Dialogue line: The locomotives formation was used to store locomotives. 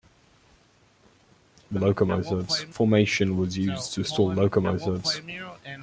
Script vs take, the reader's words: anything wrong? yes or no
no